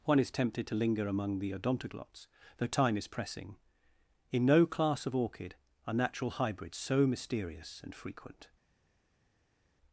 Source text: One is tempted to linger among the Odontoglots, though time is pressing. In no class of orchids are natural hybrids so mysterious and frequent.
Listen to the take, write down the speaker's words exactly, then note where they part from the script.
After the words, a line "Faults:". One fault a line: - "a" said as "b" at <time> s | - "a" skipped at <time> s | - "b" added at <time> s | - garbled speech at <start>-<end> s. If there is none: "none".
One is tempted to linger among the Odontoglots, though time is pressing. In no class of orchid are natural hybrids so mysterious and frequent.
Faults:
- "orchids" said as "orchid" at 5.2 s